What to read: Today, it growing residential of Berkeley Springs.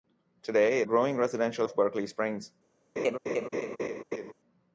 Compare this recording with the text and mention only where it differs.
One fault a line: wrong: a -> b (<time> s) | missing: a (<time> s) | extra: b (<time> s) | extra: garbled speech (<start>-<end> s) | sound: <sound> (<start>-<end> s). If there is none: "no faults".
sound: laugh (3.0-4.3 s)